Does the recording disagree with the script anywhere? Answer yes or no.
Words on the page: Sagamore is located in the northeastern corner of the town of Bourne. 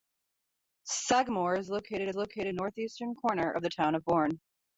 yes